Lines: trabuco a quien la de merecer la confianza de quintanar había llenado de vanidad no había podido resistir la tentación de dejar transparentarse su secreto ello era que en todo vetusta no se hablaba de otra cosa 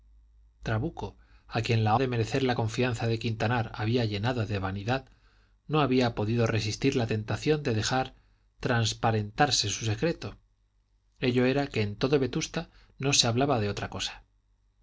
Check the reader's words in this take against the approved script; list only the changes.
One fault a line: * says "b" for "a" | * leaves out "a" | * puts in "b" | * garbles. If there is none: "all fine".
all fine